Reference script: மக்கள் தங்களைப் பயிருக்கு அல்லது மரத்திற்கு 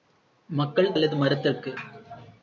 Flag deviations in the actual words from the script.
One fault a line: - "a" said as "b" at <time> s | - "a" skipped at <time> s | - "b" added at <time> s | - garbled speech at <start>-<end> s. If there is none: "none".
- "தங்களைப் பயிருக்கு" skipped at 0.9 s